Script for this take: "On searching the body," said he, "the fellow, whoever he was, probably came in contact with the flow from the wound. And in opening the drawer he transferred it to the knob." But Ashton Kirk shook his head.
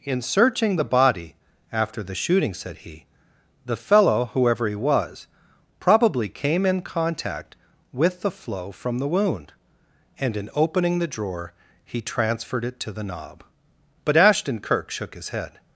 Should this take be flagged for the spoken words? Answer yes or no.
yes